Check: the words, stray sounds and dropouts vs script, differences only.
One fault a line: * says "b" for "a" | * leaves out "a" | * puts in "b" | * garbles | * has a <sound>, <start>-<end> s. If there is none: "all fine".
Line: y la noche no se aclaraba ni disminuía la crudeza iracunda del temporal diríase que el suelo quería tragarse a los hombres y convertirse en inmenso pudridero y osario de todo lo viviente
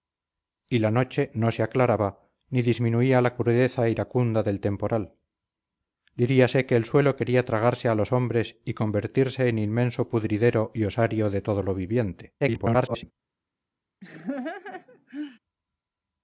* garbles
* has a laugh, 14.0-15.4 s